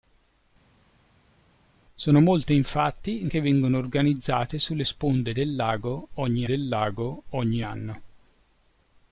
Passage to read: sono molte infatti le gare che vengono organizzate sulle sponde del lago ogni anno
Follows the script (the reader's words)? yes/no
no